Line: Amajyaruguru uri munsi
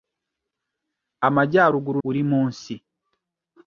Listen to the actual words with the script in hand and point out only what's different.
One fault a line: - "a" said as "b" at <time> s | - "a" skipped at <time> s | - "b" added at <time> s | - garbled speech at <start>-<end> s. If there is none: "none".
none